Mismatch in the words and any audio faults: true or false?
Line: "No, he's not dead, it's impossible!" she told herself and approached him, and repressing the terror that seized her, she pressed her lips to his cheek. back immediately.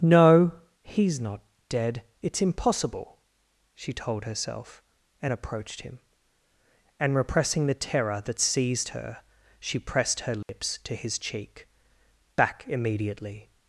true